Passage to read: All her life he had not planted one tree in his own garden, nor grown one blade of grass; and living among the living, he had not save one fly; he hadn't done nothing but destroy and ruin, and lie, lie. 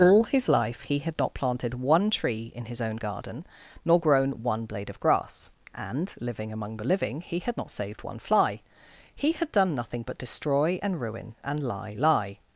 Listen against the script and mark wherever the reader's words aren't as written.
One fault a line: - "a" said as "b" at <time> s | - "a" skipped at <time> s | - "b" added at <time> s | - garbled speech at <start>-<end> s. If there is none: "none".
- "her" said as "his" at 0.2 s
- "save" said as "saved" at 7.7 s
- "hadn't" said as "had" at 9.3 s